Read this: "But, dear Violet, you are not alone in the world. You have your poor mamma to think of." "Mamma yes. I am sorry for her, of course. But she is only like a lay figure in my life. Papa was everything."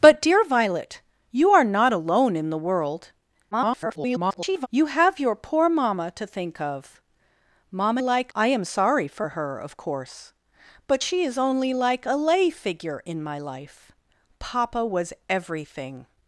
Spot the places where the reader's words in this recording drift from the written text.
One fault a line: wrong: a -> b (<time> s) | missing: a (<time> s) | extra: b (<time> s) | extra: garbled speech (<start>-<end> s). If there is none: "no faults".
extra: garbled speech (3.5-4.7 s)
wrong: yes -> like (8.0 s)